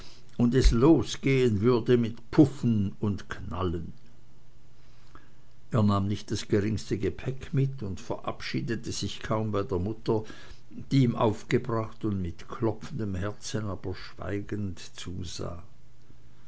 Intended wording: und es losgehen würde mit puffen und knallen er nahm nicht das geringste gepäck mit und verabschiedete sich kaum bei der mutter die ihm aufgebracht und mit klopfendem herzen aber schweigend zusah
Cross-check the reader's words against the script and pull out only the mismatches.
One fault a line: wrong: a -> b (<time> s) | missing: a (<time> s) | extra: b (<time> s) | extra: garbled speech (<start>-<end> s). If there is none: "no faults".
no faults